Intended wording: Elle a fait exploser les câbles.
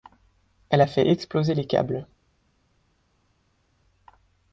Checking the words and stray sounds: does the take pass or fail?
pass